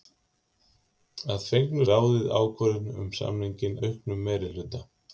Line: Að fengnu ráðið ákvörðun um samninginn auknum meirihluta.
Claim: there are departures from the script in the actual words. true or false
false